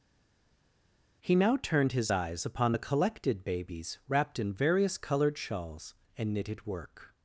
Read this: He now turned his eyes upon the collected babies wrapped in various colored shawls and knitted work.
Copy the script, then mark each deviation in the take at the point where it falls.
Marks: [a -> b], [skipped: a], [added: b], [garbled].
He now turned his eyes upon the collected babies wrapped in various colored shawls and knitted work.